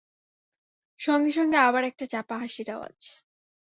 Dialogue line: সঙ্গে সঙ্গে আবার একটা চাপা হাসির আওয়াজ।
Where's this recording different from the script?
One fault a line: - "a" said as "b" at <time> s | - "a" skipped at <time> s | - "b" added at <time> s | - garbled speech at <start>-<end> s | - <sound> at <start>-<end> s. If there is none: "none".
none